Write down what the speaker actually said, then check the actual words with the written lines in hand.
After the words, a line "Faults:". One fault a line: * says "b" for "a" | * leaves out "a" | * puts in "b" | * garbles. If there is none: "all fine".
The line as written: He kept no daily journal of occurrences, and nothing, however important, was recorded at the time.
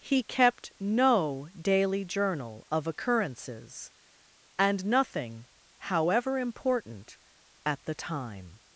He kept no daily journal of occurrences, and nothing, however important, at the time.
Faults:
* leaves out "was recorded"